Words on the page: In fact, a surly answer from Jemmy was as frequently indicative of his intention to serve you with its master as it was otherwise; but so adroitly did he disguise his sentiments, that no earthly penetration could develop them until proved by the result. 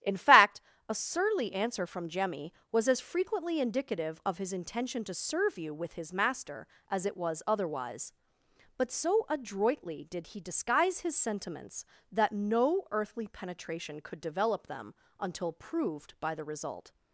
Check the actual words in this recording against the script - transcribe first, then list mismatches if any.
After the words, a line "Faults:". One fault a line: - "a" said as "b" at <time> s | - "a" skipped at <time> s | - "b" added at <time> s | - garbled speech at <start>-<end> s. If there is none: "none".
In fact, a surly answer from Jemmy was as frequently indicative of his intention to serve you with his master as it was otherwise; but so adroitly did he disguise his sentiments, that no earthly penetration could develop them until proved by the result.
Faults:
- "its" said as "his" at 5.9 s